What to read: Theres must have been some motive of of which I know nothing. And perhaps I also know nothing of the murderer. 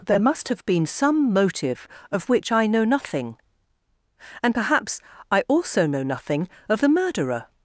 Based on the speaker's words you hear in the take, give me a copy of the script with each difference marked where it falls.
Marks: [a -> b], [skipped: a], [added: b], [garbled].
[Theres -> There] must have been some motive of [skipped: of] which I know nothing. And perhaps I also know nothing of the murderer.